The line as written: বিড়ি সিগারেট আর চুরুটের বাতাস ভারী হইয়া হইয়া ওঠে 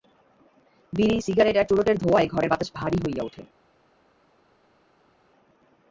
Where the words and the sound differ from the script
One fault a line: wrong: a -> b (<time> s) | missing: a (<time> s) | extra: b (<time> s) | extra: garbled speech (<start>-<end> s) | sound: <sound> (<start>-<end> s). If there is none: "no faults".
extra: ধোঁয়ায় ঘরের (2.0 s)
missing: হইয়া (3.2 s)